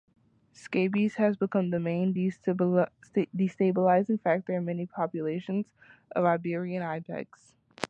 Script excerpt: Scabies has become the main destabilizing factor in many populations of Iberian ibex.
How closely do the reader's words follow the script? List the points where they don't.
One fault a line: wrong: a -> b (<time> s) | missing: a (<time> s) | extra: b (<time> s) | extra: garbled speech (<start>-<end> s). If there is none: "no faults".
no faults